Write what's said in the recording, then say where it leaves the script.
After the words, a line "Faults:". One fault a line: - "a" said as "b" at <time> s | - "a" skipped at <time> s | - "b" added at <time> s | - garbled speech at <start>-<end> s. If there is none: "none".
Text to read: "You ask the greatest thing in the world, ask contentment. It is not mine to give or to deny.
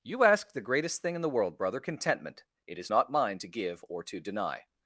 "You ask the greatest thing in the world, brother contentment. It is not mine to give or to deny.
Faults:
- "ask" said as "brother" at 1.6 s